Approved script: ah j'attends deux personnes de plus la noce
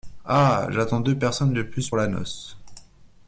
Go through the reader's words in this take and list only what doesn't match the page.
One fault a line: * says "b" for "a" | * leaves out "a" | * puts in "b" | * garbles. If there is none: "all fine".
all fine